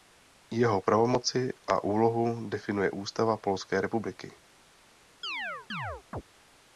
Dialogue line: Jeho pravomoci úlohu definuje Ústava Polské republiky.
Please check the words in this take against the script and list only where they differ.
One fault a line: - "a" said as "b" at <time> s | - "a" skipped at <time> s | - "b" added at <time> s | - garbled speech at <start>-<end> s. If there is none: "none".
- "a" added at 1.7 s